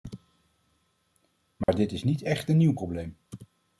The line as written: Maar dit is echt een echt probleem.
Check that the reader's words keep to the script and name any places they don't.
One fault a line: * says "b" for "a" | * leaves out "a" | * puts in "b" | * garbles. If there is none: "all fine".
* puts in "niet"
* says "nieuw" for "echt"